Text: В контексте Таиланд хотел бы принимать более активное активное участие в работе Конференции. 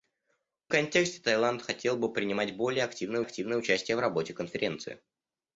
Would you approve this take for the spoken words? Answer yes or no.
yes